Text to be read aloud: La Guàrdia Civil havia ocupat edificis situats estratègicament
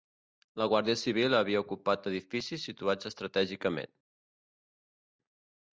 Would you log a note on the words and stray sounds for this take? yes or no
no